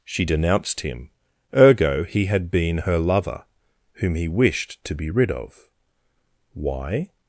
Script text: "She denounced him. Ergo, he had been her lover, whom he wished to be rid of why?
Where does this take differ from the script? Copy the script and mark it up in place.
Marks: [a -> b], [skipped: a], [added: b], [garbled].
"She denounced him. Ergo, he had been her lover, whom he wished to be rid of why?